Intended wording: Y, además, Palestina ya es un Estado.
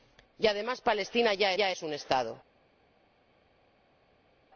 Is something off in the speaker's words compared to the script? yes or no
yes